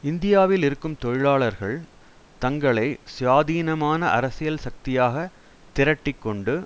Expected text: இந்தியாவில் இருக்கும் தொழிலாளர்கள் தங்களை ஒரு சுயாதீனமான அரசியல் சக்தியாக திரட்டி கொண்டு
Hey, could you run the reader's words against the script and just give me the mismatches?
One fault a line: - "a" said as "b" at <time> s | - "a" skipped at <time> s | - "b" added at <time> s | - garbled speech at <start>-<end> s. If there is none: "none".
- "ஒரு" skipped at 2.9 s